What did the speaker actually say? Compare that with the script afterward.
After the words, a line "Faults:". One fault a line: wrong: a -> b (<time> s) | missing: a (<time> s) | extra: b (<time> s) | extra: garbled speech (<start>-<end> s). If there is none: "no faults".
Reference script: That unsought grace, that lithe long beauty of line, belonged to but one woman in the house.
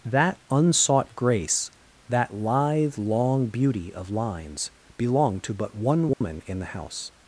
That unsought grace, that lithe long beauty of lines, belonged to but one woman in the house.
Faults:
wrong: line -> lines (4.1 s)